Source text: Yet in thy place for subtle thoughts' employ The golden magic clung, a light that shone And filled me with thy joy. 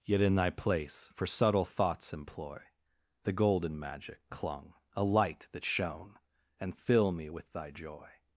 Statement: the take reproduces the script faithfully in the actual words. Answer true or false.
false